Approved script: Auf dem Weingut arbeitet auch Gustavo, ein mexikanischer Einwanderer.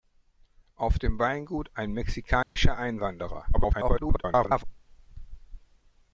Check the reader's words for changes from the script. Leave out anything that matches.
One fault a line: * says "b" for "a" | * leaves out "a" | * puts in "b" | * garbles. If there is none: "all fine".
* leaves out "arbeitet auch Gustavo"
* garbles